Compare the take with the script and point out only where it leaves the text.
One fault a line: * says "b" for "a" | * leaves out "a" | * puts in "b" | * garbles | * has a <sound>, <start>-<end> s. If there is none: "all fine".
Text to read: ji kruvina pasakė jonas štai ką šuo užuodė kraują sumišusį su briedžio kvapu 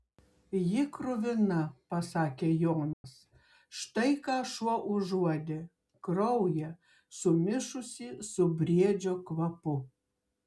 * has a dropout, 2.9-3.0 s